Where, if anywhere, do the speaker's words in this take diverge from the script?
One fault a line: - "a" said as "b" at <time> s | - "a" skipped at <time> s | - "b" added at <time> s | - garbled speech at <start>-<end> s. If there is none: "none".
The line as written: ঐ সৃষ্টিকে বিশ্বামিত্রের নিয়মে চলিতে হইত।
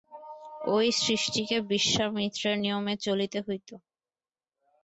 none